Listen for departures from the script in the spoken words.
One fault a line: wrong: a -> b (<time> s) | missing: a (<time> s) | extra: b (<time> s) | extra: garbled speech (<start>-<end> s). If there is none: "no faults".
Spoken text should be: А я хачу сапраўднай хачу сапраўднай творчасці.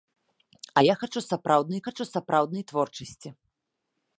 no faults